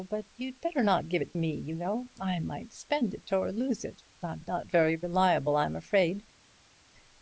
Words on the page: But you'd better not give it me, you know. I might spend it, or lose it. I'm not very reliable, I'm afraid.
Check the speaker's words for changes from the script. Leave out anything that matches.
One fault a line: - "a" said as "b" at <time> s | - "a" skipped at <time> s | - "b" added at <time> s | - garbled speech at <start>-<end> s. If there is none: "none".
none